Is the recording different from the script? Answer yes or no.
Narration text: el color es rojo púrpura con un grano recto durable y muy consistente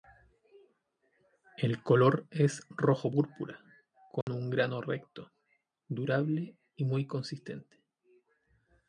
no